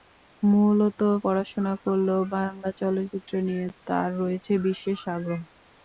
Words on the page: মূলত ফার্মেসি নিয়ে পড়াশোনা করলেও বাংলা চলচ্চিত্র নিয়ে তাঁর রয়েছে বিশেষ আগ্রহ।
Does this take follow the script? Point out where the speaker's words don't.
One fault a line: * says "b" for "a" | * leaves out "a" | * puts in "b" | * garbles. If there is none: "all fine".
* leaves out "ফার্মেসি নিয়ে"